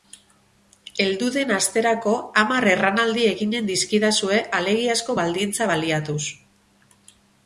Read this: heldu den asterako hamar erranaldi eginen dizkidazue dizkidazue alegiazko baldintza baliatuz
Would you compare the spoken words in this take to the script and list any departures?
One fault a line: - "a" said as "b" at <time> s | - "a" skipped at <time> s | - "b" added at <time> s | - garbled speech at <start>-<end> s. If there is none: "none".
- "dizkidazue" skipped at 4.4 s